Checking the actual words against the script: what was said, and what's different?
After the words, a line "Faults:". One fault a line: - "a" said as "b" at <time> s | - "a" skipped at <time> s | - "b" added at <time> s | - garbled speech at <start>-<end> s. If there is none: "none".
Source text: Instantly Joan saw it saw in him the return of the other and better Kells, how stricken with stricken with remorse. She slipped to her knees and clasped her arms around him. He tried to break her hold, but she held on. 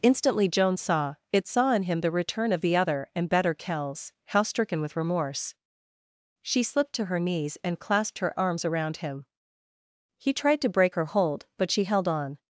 Instantly Joan saw it saw in him the return of the other and better Kells, how stricken with remorse. She slipped to her knees and clasped her arms around him. He tried to break her hold, but she held on.
Faults:
- "stricken with" skipped at 5.0 s